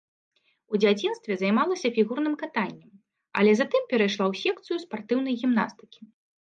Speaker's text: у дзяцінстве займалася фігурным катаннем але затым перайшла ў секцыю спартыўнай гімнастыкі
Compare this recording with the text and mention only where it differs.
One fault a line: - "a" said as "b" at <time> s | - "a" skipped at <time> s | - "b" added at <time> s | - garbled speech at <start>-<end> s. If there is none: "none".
none